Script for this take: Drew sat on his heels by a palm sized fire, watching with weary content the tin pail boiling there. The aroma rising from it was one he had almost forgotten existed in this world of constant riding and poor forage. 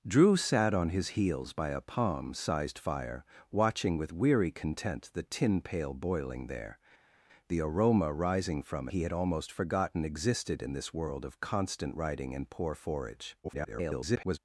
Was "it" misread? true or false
true